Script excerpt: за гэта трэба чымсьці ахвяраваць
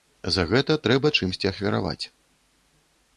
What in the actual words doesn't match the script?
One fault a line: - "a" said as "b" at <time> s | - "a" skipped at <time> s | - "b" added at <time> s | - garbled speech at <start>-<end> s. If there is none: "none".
none